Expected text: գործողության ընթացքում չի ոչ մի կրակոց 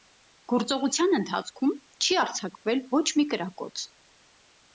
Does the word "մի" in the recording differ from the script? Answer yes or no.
no